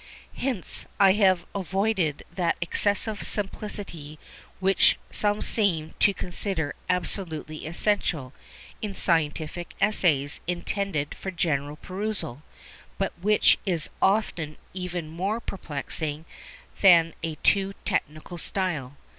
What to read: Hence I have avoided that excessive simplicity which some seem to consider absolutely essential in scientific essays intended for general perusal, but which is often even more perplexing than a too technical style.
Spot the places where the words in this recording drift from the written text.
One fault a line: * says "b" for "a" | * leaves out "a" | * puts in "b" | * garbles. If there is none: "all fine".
all fine